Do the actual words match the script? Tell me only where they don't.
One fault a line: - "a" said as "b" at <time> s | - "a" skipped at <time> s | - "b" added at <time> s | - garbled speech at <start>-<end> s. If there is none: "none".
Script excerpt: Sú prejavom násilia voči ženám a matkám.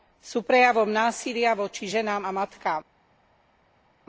none